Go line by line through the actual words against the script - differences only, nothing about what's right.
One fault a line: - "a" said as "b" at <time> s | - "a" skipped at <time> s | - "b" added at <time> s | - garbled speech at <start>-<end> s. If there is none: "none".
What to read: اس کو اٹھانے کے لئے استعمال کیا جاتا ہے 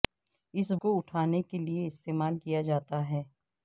none